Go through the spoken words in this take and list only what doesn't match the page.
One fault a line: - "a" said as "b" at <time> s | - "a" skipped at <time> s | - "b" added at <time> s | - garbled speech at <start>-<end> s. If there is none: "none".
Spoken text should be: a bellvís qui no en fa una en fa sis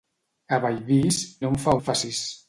- "qui" skipped at 1.2 s
- "una" skipped at 1.8 s